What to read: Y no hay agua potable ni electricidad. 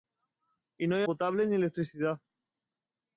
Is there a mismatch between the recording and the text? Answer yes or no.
yes